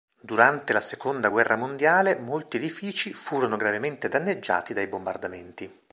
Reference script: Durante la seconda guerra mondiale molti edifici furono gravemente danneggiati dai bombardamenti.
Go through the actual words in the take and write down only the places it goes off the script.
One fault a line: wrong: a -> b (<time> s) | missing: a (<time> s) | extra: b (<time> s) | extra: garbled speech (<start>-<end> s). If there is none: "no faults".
no faults